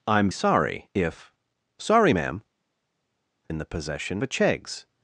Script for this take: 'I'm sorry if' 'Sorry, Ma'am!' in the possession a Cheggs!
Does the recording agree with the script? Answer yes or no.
yes